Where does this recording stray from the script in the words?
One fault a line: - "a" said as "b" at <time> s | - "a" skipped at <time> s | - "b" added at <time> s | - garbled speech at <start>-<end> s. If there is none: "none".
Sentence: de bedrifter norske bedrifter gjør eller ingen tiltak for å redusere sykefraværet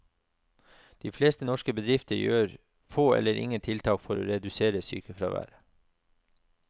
- "bedrifter" said as "fleste" at 1.1 s
- "få" added at 2.9 s